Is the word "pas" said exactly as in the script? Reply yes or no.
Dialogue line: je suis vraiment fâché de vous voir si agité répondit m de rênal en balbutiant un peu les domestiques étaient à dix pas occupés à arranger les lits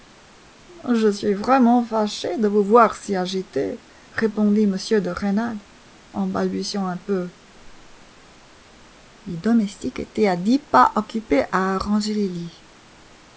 yes